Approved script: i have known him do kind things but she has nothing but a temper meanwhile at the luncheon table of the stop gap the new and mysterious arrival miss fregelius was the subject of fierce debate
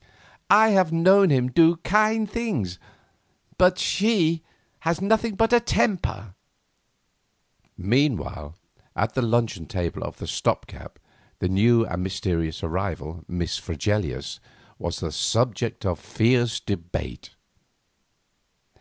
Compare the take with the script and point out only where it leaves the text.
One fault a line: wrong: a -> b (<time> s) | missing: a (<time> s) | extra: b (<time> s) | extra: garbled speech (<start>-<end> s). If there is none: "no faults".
no faults